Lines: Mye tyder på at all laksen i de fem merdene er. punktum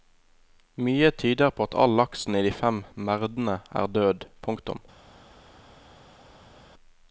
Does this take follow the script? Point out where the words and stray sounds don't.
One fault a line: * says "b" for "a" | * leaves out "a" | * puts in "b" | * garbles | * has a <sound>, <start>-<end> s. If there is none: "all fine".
* puts in "død"